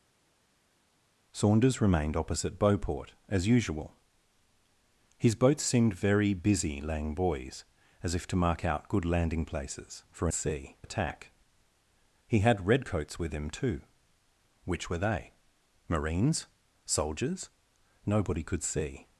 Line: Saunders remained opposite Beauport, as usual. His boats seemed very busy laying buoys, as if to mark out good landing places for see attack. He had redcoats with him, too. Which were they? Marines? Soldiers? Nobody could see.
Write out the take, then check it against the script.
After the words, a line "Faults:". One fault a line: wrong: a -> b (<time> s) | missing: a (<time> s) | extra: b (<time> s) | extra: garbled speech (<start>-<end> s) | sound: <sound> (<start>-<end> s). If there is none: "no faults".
Saunders remained opposite Beauport, as usual. His boats seemed very busy laying buoys, as if to mark out good landing places for see attack. He had redcoats with him, too. Which were they? Marines? Soldiers? Nobody could see.
Faults:
no faults